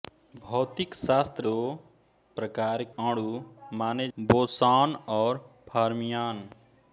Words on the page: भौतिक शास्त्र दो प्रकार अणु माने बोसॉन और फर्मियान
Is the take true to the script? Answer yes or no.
yes